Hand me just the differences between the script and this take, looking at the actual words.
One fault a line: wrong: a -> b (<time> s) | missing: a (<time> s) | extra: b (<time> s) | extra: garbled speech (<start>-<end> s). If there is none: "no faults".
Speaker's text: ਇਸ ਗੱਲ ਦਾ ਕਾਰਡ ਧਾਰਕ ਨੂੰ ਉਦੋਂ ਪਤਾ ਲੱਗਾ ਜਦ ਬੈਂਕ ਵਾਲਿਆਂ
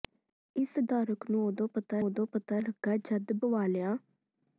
missing: ਗੱਲ ਦਾ ਕਾਰਡ (0.7 s)
extra: ਉਦੋਂ ਪਤਾ (2.0 s)
missing: ਬੈਂਕ (3.3 s)